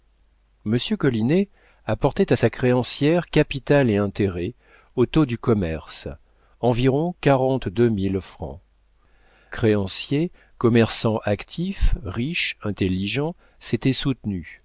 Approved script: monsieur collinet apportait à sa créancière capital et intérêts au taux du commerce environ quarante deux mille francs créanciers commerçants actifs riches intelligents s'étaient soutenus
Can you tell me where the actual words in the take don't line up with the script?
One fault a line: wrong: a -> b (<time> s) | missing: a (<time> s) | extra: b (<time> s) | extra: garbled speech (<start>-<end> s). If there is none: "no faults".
no faults